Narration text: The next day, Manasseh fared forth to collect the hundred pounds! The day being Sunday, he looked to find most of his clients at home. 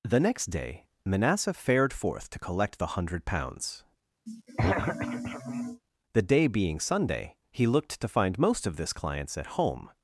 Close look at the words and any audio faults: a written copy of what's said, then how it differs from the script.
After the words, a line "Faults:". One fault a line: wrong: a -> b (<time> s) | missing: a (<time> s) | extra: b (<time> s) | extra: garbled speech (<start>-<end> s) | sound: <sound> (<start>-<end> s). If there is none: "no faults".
The next day, Manasseh fared forth to collect the hundred pounds! The day being Sunday, he looked to find most of this clients at home.
Faults:
sound: throat clearing (4.3-5.8 s)
wrong: his -> this (8.8 s)